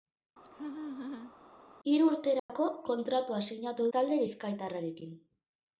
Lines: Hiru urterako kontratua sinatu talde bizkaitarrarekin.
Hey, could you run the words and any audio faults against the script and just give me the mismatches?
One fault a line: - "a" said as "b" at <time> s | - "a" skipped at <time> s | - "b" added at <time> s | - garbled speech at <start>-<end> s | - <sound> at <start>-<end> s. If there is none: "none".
- laugh at 0.4-1.3 s
- dropout at 2.4-2.5 s